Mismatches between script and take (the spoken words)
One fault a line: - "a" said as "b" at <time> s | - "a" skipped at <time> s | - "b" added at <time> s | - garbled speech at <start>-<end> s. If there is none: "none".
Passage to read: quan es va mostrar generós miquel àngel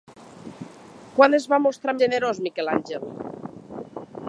none